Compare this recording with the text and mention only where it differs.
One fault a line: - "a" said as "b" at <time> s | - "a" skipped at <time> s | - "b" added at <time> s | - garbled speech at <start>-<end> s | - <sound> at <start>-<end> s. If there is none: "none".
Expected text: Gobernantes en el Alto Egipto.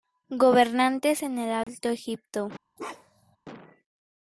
- dropout at 1.6-1.7 s
- bark at 2.8-3.4 s